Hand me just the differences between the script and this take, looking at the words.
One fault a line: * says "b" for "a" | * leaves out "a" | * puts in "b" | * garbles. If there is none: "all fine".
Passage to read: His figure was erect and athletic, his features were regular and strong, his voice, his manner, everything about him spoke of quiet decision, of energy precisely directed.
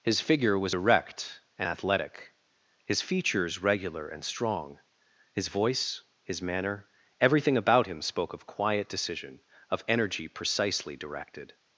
* leaves out "were"